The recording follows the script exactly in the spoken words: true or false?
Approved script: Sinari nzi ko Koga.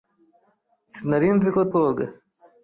true